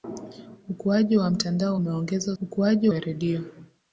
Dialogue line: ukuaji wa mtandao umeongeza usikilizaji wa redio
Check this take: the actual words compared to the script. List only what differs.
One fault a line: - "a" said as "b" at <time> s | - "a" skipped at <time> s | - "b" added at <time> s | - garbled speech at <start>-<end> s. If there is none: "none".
- "usikilizaji" said as "ukuaji" at 2.4 s